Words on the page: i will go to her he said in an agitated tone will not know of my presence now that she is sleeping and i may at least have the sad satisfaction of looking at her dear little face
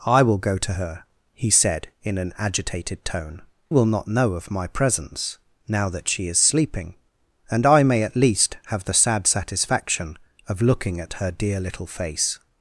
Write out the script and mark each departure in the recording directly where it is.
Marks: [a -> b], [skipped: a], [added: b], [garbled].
i will go to her he said in an agitated tone will not know of my presence now that she is sleeping and i may at least have the sad satisfaction of looking at her dear little face